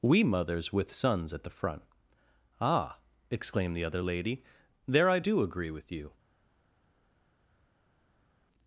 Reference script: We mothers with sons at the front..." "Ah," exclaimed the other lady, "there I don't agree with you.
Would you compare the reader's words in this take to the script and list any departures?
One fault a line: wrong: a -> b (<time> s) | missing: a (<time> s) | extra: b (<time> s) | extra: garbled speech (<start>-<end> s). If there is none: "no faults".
wrong: don't -> do (5.2 s)